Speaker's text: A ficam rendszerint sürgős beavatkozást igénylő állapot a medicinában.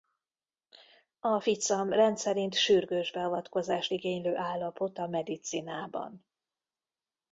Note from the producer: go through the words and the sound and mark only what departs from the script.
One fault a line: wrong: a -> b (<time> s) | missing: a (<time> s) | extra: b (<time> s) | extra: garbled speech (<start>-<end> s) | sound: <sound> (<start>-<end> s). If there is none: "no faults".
no faults